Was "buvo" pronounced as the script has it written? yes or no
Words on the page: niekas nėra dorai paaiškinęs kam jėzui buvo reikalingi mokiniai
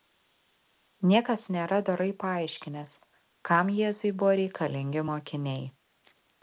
yes